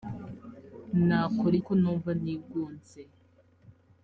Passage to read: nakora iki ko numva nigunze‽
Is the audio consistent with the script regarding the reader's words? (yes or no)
no